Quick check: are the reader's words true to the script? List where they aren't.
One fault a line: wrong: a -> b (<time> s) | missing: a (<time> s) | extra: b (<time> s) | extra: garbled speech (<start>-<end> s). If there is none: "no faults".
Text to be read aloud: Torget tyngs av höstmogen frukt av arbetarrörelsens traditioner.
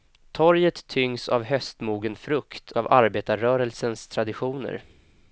no faults